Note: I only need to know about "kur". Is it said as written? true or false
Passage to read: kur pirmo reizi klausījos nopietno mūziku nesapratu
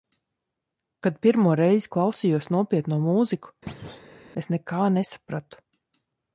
false